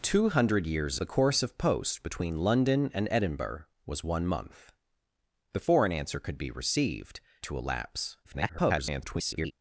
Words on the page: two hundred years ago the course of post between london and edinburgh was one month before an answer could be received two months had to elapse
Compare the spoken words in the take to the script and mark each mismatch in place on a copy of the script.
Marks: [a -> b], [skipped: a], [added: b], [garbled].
two hundred years [skipped: ago] the course of post between london and edinburgh was one month before an answer could be received [skipped: two months had] to elapse [garbled]